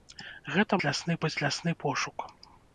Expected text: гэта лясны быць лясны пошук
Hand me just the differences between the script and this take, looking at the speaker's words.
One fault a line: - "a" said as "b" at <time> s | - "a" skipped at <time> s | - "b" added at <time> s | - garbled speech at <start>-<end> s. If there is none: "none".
none